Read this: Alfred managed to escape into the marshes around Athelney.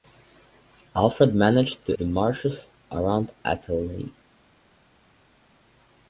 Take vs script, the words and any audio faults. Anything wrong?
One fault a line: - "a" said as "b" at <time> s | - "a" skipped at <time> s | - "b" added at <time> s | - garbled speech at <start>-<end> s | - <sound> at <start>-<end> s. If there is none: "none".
- "escape into" skipped at 1.9 s